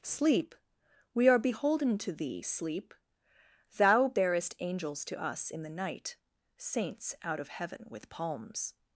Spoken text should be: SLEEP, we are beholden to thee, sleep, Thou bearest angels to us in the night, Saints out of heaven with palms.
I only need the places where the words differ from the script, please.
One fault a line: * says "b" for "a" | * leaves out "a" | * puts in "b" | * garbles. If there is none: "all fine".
all fine